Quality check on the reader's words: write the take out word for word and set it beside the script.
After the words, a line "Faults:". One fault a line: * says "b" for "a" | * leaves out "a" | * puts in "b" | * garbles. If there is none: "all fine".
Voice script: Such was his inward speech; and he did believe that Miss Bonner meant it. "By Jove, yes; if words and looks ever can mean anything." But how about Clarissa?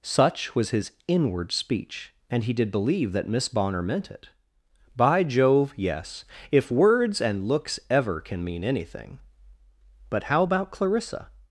Such was his inward speech; and he did believe that Miss Bonner meant it. "By Jove, yes; if words and looks ever can mean anything." But how about Clarissa?
Faults:
all fine